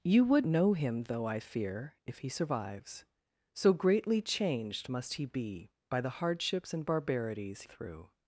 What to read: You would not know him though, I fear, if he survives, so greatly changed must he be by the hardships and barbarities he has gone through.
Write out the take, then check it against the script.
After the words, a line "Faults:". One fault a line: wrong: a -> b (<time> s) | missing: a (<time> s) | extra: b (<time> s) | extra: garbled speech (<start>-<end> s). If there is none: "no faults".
You would know him though, I fear, if he survives, so greatly changed must he be by the hardships and barbarities through.
Faults:
missing: not (0.5 s)
missing: he has gone (7.6 s)